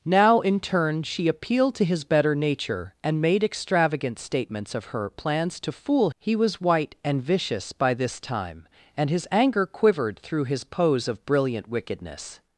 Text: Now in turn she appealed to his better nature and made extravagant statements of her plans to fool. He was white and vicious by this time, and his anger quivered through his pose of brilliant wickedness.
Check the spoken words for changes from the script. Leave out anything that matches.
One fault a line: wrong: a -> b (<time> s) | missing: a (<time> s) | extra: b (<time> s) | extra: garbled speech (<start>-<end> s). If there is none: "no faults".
no faults